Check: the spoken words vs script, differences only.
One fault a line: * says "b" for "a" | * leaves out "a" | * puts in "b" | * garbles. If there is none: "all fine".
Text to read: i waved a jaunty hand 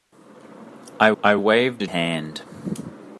* puts in "i"
* leaves out "jaunty"